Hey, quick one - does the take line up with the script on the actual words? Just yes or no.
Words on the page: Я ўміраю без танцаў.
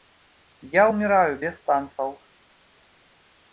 yes